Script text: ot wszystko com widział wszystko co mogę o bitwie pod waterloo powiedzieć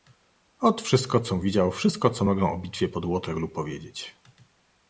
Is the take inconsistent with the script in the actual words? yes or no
no